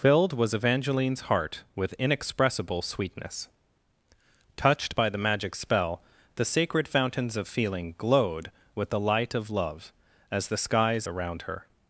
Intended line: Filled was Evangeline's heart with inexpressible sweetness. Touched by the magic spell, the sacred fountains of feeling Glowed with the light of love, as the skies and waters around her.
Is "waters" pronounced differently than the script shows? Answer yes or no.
yes